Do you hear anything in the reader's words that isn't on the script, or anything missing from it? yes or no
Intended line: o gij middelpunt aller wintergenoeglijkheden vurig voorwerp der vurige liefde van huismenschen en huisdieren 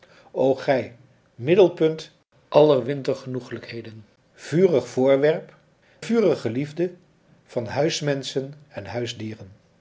yes